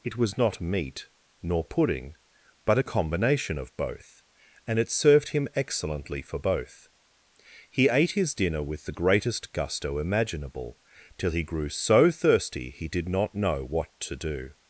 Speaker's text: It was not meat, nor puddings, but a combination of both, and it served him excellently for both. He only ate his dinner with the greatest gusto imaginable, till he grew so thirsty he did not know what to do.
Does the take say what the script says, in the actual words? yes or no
no